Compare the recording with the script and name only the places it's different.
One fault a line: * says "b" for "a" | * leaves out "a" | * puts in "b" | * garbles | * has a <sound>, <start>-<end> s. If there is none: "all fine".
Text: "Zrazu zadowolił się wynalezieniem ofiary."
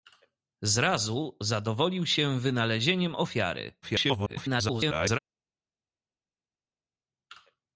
* garbles